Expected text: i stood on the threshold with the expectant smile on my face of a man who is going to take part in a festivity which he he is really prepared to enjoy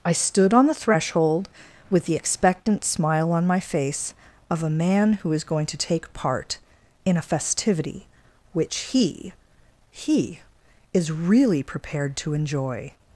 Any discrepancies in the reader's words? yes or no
no